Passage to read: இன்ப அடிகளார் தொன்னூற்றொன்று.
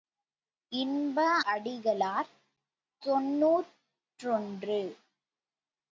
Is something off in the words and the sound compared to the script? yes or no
no